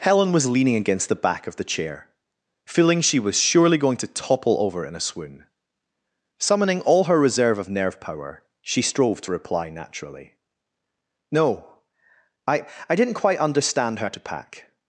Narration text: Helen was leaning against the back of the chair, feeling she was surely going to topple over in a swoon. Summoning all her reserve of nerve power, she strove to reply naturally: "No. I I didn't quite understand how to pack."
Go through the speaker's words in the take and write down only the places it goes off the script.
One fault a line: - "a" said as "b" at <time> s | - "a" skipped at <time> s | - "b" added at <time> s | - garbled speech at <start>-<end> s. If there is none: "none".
none